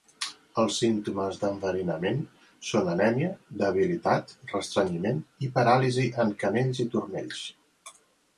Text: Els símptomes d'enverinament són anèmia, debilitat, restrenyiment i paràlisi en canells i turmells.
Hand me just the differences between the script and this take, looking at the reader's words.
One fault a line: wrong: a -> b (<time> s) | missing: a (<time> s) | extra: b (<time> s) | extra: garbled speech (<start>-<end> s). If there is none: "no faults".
no faults